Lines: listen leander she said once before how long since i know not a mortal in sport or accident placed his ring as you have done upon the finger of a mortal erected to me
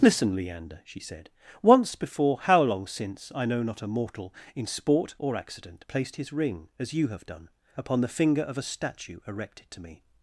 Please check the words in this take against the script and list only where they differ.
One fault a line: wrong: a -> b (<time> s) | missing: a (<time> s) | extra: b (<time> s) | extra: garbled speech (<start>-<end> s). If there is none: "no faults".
wrong: mortal -> statue (8.6 s)